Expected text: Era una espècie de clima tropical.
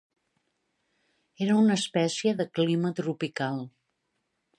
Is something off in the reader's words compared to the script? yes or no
no